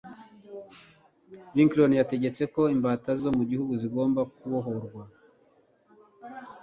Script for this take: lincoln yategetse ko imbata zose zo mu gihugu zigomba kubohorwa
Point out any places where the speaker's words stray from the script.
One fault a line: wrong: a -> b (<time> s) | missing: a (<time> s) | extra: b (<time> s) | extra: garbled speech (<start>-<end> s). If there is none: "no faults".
missing: zose (3.1 s)